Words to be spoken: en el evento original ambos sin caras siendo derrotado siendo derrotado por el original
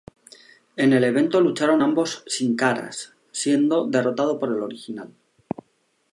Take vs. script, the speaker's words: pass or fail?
fail